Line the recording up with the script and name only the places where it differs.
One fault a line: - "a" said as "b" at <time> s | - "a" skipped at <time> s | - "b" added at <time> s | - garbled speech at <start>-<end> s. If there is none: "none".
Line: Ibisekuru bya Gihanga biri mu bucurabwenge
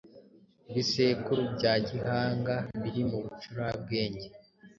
none